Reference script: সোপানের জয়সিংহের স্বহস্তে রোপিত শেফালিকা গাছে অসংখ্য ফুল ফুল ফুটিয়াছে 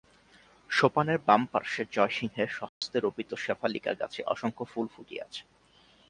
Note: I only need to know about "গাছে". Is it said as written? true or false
true